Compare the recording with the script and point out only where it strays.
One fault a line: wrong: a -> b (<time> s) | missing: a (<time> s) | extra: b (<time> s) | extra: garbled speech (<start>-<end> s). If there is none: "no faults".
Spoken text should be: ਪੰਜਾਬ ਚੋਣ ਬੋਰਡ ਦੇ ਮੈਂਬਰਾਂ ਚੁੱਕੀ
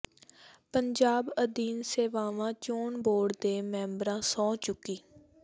extra: ਅਧੀਨ ਸੇਵਾਵਾਂ (1.4 s)
extra: ਸਹੁੰ (4.2 s)